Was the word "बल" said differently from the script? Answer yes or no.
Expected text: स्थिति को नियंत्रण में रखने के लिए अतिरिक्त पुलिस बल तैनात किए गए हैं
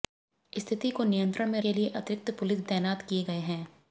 yes